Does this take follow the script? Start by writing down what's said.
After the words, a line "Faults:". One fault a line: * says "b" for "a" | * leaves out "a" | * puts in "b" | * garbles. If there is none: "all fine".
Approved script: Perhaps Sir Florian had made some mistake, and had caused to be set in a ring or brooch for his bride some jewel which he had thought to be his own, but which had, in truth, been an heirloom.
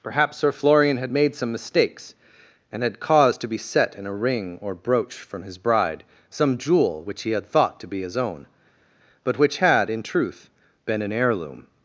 Perhaps Sir Florian had made some mistakes, and had caused to be set in a ring or brooch from his bride some jewel which he had thought to be his own, but which had, in truth, been an heirloom.
Faults:
* says "mistakes" for "mistake"
* says "from" for "for"